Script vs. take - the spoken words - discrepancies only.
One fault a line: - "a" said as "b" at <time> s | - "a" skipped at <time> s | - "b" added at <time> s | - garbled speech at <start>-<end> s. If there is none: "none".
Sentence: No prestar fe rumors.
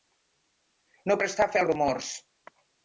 - "als" added at 1.6 s